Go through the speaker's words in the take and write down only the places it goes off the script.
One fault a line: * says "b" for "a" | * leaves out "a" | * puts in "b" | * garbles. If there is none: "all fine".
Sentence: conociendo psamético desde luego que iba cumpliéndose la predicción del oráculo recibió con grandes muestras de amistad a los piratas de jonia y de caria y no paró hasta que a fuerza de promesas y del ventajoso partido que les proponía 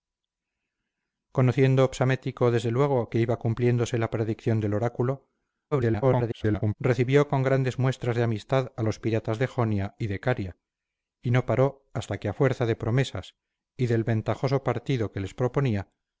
* garbles